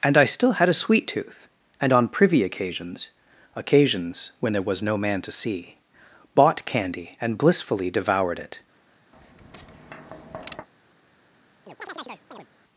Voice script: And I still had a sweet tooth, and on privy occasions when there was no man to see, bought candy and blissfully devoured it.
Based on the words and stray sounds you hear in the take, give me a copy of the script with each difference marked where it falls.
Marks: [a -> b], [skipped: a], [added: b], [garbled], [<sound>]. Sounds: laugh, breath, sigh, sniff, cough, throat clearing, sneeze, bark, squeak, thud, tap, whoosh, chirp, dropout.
And I still had a sweet tooth, and on privy occasions [added: occasions] when there was no man to see, bought candy and blissfully devoured it. [tap] [chirp]